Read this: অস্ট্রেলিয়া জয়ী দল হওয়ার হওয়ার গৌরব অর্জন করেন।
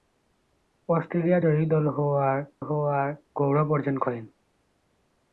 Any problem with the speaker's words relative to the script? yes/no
no